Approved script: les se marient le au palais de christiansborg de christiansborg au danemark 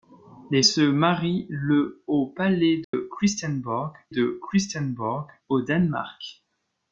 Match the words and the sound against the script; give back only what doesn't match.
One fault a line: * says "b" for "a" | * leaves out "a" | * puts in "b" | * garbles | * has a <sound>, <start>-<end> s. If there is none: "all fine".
* has a dropout, 2.8-2.9 s